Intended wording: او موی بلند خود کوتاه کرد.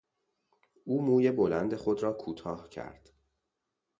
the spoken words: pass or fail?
fail